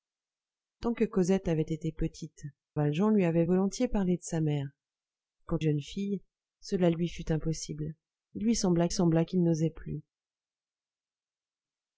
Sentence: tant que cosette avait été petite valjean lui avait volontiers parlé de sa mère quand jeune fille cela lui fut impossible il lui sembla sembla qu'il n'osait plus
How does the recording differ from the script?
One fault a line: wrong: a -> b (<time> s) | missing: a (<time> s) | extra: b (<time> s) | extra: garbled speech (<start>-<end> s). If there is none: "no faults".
no faults